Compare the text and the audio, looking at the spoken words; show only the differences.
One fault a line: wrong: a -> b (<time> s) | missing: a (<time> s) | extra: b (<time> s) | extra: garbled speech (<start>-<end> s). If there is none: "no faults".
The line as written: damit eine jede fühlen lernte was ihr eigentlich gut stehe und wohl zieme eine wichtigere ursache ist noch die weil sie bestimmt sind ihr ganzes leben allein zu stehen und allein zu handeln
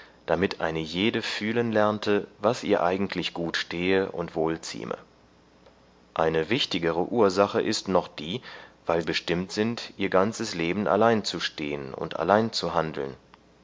missing: sie (9.0 s)